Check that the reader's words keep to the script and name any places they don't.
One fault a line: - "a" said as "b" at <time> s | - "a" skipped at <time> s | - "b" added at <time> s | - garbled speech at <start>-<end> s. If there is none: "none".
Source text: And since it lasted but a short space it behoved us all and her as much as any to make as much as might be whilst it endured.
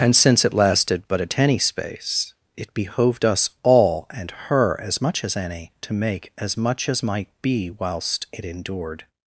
- "short" said as "tenny" at 1.3 s